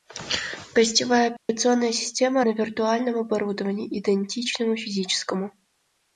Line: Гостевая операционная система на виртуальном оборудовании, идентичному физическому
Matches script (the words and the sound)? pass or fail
fail